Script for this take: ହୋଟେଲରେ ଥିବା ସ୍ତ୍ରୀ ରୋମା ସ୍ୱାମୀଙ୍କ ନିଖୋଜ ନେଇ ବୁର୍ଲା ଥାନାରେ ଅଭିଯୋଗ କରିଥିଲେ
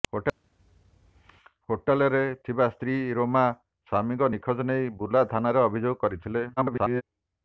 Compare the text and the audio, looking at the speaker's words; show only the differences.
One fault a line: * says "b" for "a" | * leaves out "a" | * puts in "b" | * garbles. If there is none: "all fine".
* garbles